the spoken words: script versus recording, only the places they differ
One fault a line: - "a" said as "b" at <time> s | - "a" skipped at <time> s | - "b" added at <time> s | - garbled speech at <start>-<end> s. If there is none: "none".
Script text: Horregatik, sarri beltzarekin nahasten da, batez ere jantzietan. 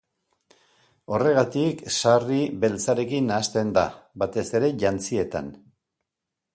none